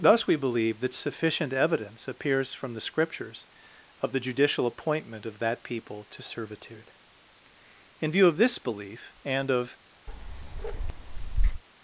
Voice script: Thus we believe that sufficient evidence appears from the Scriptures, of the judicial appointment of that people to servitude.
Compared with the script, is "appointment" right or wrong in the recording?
right